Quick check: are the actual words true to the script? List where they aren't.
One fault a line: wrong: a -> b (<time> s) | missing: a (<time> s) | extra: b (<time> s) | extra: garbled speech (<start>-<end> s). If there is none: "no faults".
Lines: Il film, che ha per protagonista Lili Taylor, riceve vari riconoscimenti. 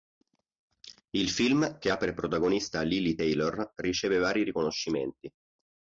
no faults